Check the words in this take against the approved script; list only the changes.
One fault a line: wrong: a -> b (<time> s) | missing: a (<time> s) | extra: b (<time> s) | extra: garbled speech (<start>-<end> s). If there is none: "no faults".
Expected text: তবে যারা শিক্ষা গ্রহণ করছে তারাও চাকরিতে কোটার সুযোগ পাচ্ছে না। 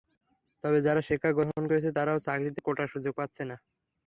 no faults